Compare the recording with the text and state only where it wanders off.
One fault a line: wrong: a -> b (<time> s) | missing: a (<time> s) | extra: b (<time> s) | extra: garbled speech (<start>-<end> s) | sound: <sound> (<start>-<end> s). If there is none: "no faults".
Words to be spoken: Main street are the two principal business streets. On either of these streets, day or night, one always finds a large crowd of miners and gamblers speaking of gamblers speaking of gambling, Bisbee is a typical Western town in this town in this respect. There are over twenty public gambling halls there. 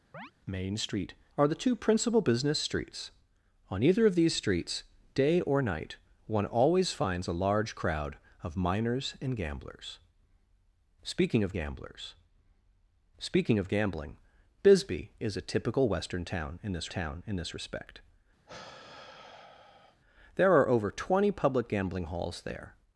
sound: chirp (0.1-0.3 s)
sound: sigh (18.5-20.0 s)